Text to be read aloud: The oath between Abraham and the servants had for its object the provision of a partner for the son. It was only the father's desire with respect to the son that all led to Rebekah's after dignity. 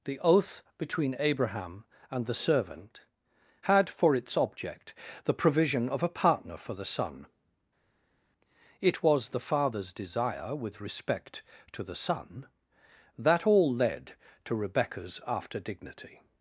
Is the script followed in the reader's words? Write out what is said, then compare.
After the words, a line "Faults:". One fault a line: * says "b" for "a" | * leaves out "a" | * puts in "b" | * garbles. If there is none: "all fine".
The oath between Abraham and the servant had for its object the provision of a partner for the son. It was the father's desire with respect to the son that all led to Rebekah's after dignity.
Faults:
* says "servant" for "servants"
* leaves out "only"